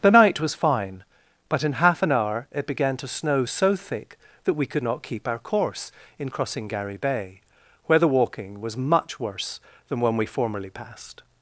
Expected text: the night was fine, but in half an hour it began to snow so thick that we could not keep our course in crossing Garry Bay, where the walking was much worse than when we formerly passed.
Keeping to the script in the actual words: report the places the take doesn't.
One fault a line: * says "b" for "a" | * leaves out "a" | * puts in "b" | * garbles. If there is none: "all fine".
all fine